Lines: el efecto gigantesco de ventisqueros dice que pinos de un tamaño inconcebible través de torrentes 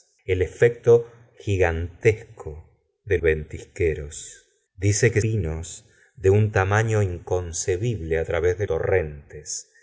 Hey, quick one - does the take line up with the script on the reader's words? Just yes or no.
yes